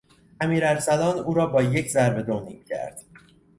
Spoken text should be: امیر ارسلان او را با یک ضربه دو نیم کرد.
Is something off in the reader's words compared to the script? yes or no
no